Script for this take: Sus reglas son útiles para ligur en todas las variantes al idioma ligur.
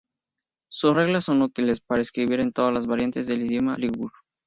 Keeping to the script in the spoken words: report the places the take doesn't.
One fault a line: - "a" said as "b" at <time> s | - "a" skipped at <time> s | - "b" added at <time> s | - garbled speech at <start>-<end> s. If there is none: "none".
- "ligur" said as "escribir" at 2.0 s
- "al" said as "del" at 3.3 s